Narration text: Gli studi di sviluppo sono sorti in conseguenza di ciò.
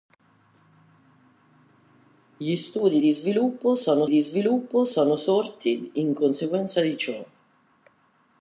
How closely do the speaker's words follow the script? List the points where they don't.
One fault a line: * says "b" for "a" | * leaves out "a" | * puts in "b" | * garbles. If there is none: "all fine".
* puts in "di sviluppo sono"